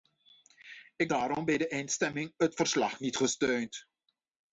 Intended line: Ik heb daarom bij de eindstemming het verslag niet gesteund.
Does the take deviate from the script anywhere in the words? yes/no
yes